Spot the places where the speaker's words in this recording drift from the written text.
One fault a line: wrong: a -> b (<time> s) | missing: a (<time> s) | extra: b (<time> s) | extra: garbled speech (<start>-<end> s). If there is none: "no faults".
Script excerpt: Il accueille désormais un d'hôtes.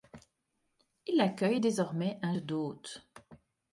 no faults